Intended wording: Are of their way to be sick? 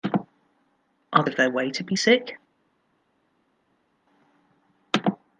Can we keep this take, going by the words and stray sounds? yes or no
yes